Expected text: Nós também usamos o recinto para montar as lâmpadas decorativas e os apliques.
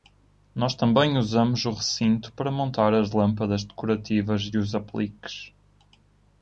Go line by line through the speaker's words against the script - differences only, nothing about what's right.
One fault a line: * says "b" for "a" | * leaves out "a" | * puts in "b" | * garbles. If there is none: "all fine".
all fine